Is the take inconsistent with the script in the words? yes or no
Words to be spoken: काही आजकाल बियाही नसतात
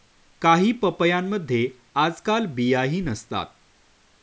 yes